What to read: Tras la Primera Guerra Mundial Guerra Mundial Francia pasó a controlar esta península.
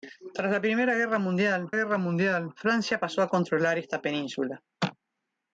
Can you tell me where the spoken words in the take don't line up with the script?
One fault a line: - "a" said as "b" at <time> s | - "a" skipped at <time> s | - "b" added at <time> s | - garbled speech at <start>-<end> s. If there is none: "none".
none